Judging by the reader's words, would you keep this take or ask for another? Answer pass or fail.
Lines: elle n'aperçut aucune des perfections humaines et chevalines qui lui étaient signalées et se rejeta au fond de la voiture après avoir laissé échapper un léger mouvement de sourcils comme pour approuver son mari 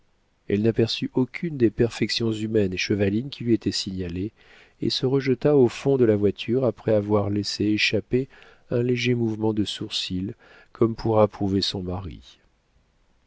pass